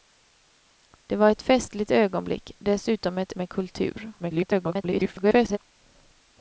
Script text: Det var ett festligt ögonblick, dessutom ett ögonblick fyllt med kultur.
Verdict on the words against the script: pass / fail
fail